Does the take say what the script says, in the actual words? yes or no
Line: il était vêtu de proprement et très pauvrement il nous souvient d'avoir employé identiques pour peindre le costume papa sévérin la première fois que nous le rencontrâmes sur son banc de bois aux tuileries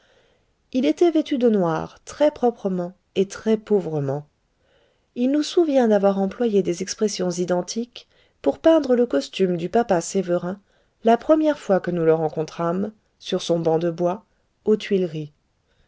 no